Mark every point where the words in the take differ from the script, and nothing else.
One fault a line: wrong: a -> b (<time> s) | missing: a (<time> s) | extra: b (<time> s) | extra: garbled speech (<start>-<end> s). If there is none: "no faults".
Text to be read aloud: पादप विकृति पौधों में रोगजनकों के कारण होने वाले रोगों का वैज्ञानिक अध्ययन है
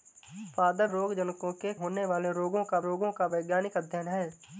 missing: विकृति पौधों में (0.9 s)
missing: कारण (1.7 s)
extra: रोगों का (2.8 s)